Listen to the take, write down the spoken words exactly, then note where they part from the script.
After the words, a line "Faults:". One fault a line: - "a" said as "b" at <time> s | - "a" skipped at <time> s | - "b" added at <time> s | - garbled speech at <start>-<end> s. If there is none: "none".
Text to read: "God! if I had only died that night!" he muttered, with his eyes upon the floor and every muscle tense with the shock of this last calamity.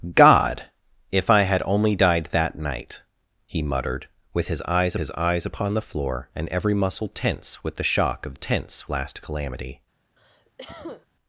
"God! if I had only died that night!" he muttered, with his eyes his eyes upon the floor and every muscle tense with the shock of tense last calamity.
Faults:
- "his eyes" added at 5.0 s
- "this" said as "tense" at 8.3 s